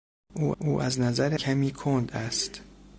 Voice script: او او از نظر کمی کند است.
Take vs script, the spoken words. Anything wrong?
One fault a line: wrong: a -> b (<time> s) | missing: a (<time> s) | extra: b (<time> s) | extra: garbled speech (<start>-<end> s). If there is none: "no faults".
no faults